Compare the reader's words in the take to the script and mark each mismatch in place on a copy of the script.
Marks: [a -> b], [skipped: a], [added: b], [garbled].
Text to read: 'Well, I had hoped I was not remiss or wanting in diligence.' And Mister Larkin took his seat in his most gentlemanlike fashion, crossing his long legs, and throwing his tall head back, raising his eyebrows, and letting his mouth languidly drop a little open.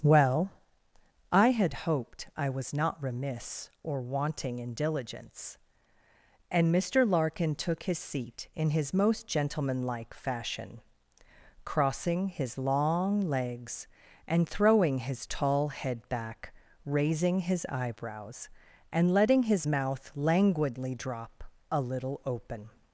'Well, I had hoped I was not remiss or wanting in diligence.' And Mister Larkin took his seat in his most gentlemanlike fashion, crossing his long legs, and throwing his tall head back, raising his eyebrows, and letting his mouth languidly drop a little open.